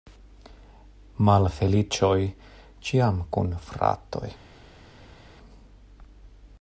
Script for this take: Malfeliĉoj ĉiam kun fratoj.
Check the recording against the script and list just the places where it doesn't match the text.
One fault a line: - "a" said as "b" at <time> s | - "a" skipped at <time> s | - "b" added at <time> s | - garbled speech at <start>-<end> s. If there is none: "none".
none